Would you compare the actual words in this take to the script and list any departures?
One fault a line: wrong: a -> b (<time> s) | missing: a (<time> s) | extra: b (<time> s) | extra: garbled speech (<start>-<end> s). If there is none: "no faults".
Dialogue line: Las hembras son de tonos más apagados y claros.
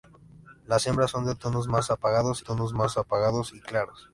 extra: tonos más apagados (2.4 s)